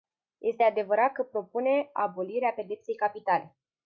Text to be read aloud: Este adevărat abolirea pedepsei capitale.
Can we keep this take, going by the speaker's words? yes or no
no